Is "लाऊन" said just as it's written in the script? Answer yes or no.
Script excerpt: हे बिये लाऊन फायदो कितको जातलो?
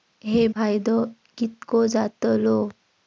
no